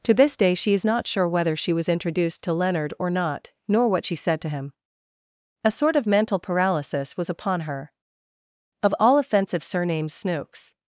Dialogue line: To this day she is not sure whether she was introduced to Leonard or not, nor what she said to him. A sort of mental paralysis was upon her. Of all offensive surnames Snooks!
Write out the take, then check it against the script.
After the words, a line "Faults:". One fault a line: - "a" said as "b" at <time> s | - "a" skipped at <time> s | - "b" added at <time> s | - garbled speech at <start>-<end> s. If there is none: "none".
To this day she is not sure whether she was introduced to Leonard or not, nor what she said to him. A sort of mental paralysis was upon her. Of all offensive surnames Snooks!
Faults:
none